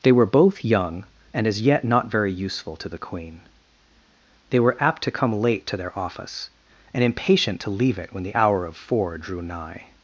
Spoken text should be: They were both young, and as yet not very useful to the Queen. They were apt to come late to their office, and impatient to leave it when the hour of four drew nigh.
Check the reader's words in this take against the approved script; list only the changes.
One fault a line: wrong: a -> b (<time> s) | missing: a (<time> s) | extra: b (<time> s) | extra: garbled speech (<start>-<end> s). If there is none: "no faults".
no faults